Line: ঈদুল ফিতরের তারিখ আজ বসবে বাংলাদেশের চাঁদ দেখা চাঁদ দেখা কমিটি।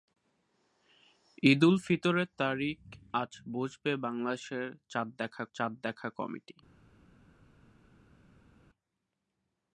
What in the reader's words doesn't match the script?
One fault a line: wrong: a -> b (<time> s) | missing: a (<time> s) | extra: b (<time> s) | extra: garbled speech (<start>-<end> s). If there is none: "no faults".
no faults